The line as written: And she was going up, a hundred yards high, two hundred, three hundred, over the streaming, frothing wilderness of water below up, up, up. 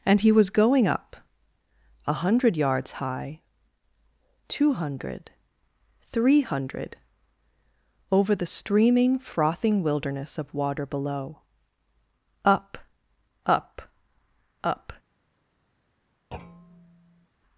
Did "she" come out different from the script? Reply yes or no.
yes